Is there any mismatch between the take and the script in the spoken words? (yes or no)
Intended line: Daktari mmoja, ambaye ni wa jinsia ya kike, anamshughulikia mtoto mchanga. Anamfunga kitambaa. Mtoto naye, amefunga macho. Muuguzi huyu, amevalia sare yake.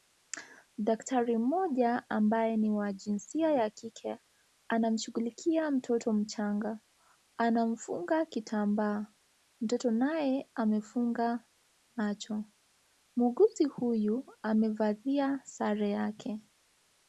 no